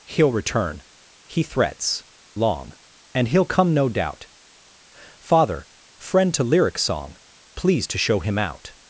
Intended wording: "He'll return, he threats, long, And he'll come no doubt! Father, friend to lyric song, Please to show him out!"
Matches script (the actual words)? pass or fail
pass